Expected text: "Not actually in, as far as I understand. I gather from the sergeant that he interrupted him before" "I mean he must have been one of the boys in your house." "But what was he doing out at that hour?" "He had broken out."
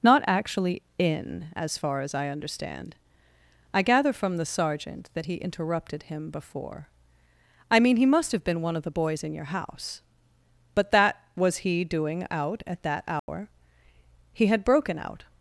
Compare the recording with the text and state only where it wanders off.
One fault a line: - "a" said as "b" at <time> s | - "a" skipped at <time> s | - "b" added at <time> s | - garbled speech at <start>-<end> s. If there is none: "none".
- "what" said as "that" at 10.9 s